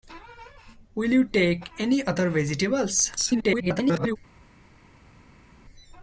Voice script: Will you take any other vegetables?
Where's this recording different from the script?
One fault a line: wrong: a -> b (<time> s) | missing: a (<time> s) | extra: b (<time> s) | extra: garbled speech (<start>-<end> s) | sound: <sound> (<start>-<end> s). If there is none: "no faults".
extra: garbled speech (3.2-4.2 s)